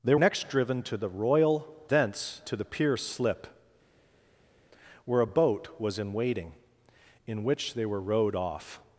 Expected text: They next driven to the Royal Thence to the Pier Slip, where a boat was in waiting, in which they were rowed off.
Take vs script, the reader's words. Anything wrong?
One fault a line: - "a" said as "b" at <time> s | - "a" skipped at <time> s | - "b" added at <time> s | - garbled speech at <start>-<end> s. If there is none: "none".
none